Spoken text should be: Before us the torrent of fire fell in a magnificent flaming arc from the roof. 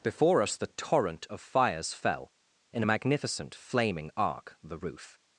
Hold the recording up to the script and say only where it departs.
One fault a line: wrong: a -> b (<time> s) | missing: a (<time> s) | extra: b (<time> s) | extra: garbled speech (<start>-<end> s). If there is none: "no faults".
wrong: fire -> fires (1.4 s)
missing: from (4.6 s)